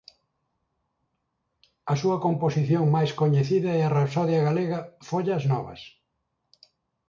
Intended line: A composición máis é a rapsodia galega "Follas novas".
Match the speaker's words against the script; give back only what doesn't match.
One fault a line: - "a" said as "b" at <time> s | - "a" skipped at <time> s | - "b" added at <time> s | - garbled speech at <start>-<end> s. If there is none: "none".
- "súa" added at 2.0 s
- "coñecida" added at 3.2 s